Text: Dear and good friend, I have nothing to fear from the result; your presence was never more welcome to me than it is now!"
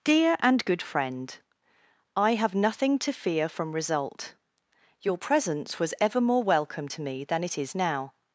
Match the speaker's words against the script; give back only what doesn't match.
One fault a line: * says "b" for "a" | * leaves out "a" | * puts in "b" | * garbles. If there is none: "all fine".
* leaves out "the"
* says "ever" for "never"